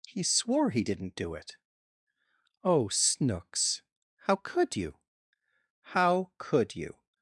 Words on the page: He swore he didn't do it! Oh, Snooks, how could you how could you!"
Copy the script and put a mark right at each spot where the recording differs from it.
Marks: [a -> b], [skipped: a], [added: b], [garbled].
He swore he didn't do it! Oh, Snooks, how could you how could you!"